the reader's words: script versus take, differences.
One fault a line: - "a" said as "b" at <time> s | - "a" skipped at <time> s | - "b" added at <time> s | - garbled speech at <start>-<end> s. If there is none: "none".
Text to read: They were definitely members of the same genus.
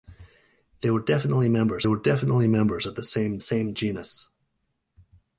- "were definitely members" added at 1.9 s
- "same" added at 3.4 s